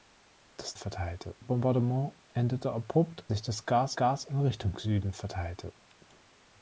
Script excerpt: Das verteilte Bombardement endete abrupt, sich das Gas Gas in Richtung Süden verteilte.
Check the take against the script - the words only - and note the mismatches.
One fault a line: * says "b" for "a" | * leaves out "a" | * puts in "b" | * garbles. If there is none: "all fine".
all fine